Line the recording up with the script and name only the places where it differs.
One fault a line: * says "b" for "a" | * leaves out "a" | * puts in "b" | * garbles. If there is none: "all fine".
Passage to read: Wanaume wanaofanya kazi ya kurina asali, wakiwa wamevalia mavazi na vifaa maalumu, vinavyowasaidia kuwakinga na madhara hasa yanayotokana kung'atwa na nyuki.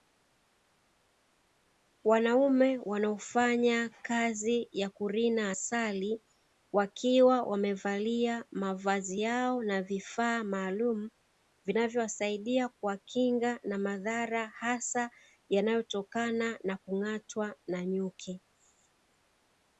* puts in "yao"
* puts in "na"